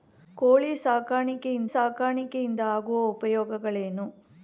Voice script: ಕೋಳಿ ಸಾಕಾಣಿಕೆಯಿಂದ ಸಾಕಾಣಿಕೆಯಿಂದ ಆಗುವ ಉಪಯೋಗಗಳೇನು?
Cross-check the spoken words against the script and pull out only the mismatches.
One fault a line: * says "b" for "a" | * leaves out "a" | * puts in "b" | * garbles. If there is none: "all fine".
all fine